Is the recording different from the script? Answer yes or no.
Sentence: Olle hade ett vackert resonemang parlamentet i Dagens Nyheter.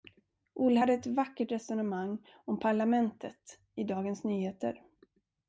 yes